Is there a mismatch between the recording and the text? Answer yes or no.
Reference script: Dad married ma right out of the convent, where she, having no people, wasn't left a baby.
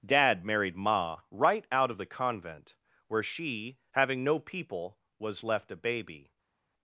yes